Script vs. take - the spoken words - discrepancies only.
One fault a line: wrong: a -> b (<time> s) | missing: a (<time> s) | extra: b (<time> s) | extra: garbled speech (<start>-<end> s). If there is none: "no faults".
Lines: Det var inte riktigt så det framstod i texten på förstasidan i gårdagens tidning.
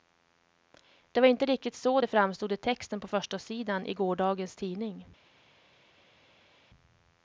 no faults